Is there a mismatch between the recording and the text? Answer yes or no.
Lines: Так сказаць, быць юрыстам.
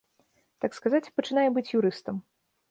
yes